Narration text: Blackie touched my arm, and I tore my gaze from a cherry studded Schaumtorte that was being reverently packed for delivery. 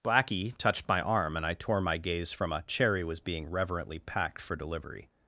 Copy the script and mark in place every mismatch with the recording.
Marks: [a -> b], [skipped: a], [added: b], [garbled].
Blackie touched my arm, and I tore my gaze from a cherry [skipped: studded Schaumtorte that] was being reverently packed for delivery.